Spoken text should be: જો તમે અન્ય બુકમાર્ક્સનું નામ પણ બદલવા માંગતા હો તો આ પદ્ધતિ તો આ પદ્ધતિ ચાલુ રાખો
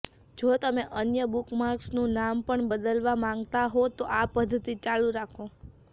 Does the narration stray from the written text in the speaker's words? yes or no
yes